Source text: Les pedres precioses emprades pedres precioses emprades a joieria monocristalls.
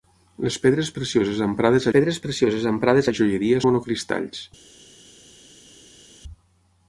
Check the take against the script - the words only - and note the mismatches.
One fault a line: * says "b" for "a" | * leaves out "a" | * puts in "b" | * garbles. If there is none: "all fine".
all fine